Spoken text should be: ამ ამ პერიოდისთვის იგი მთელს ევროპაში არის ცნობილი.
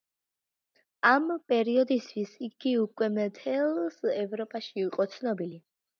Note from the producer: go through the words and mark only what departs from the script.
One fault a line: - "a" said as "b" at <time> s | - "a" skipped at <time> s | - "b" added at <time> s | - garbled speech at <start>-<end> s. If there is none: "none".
- "ამ" skipped at 1.2 s
- "უკვე" added at 2.8 s
- "არის" said as "იყო" at 4.8 s